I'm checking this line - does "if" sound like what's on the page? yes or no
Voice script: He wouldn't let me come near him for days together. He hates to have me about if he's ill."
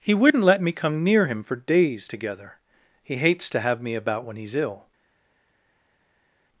no